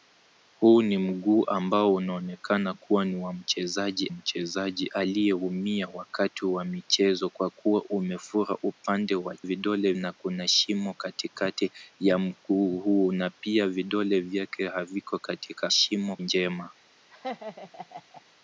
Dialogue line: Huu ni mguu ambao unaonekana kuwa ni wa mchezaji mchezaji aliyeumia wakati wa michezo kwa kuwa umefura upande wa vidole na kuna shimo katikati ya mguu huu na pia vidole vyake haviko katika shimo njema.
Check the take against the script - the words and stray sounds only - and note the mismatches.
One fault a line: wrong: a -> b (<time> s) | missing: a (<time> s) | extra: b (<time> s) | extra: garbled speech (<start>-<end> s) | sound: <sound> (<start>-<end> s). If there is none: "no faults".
sound: laugh (17.1-18.2 s)